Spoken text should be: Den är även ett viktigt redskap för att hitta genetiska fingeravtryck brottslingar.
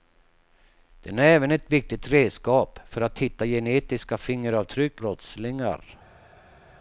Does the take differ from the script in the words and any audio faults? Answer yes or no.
no